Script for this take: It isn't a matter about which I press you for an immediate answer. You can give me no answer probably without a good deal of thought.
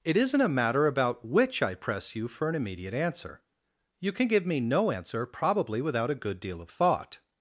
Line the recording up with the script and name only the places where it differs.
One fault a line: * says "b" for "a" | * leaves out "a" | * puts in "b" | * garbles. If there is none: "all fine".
all fine